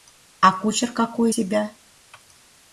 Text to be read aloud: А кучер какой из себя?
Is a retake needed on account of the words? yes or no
yes